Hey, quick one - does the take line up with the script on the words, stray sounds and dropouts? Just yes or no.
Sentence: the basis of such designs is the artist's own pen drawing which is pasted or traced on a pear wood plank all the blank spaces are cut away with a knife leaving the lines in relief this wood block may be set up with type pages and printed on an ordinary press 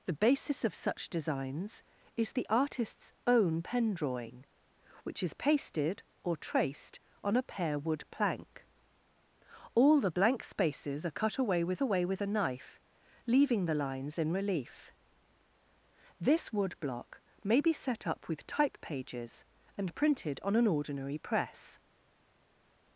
no